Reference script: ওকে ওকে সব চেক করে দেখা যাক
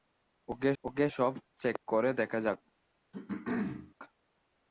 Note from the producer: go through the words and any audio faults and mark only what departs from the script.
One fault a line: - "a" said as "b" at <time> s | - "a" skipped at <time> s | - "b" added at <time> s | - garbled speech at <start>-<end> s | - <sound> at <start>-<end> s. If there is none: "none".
- throat clearing at 3.1-3.9 s